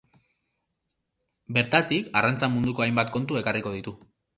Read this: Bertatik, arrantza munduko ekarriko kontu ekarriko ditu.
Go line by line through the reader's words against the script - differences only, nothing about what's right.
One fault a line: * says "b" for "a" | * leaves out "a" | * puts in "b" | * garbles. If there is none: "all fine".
* says "hainbat" for "ekarriko"